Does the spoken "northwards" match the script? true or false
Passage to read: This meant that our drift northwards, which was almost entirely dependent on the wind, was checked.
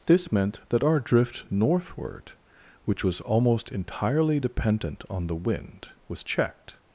false